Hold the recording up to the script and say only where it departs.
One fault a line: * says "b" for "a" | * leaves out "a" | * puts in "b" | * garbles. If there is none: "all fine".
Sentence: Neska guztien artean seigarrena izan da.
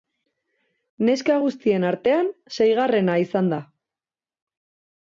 all fine